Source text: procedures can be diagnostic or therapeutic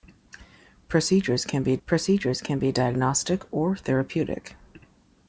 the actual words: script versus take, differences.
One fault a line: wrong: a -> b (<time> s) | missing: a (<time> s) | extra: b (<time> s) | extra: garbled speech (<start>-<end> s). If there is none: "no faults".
extra: procedures can be (1.8 s)